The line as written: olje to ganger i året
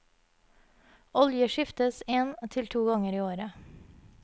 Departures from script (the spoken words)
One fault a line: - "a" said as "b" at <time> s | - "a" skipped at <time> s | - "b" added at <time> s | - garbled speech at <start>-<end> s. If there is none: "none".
- "skiftes en til" added at 1.6 s